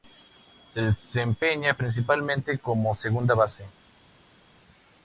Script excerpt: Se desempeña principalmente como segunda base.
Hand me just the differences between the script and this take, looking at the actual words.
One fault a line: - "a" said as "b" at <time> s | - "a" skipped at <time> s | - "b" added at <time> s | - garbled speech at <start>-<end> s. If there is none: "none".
none